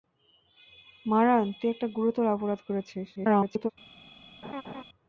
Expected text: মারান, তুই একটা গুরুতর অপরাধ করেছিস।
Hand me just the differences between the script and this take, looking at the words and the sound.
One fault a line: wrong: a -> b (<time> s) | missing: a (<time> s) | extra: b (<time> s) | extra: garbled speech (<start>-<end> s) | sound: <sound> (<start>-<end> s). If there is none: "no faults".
extra: garbled speech (3.1-3.7 s)
sound: laugh (4.4-4.8 s)